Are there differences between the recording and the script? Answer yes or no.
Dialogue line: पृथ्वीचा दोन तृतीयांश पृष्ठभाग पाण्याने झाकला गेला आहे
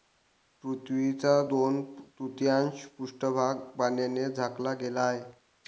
no